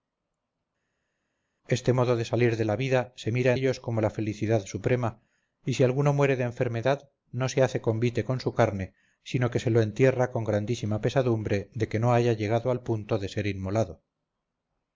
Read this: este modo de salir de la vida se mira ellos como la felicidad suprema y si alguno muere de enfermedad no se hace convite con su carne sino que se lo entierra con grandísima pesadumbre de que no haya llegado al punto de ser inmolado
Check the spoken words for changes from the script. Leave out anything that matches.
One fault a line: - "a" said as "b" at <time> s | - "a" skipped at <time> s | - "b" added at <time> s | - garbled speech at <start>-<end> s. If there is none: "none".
none